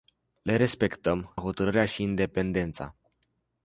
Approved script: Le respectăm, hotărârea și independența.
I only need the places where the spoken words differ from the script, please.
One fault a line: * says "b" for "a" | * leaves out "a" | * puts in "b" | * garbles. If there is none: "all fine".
all fine